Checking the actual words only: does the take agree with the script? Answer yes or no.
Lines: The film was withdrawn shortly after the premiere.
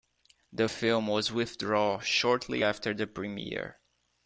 yes